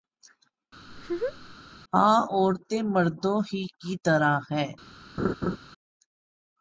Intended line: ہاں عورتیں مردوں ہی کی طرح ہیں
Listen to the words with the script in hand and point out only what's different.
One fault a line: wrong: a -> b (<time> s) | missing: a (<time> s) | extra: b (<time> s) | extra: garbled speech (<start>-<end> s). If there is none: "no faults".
no faults